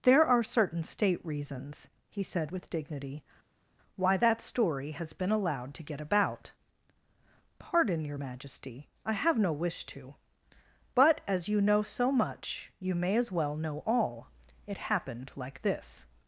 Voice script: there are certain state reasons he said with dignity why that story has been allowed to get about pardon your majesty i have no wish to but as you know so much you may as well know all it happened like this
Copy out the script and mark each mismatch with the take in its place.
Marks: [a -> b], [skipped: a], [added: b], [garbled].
there are certain state reasons he said with dignity why that story has been allowed to get about pardon your majesty i have no wish to but as you know so much you may as well know all it happened like this